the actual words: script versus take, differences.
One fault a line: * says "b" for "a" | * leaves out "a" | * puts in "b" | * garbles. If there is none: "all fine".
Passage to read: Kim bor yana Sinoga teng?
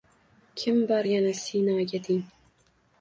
all fine